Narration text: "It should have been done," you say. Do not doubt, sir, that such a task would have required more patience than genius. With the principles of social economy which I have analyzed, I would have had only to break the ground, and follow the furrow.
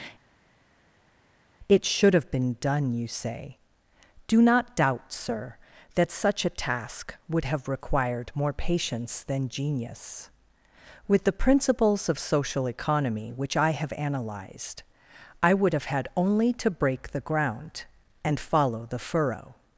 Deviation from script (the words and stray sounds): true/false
false